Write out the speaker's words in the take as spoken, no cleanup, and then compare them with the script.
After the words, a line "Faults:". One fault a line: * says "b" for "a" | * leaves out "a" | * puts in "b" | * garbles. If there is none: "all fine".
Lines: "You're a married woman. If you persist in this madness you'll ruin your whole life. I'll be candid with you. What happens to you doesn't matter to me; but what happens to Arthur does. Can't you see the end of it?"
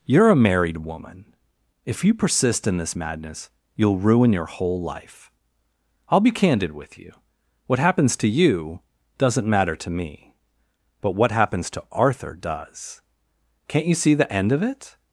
"You're a married woman. If you persist in this madness you'll ruin your whole life. I'll be candid with you. What happens to you doesn't matter to me; but what happens to Arthur does. Can't you see the end of it?"
Faults:
all fine